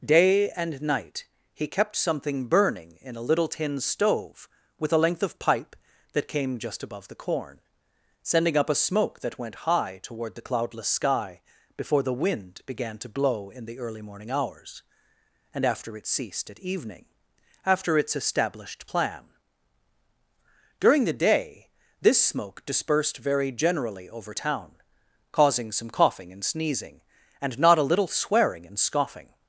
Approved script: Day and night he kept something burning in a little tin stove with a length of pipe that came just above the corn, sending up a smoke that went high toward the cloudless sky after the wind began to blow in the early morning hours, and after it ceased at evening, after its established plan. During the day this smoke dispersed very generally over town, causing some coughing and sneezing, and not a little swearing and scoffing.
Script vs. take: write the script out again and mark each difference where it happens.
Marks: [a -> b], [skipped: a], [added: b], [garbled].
Day and night he kept something burning in a little tin stove with a length of pipe that came just above the corn, sending up a smoke that went high toward the cloudless sky [after -> before] the wind began to blow in the early morning hours, and after it ceased at evening, after its established plan. During the day this smoke dispersed very generally over town, causing some coughing and sneezing, and not a little swearing and scoffing.